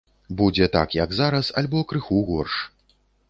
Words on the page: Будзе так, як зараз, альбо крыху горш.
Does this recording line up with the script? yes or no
yes